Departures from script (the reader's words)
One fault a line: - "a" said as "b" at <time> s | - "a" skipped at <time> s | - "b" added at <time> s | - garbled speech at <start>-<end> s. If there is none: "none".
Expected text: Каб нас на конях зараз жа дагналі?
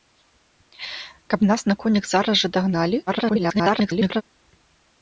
- garbled speech at 3.1-4.2 s